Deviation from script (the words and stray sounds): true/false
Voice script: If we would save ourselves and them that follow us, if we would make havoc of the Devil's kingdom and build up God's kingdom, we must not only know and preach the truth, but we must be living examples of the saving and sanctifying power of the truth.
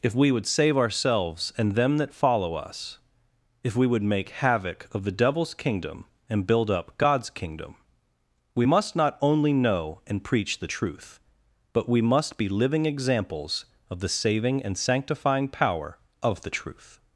false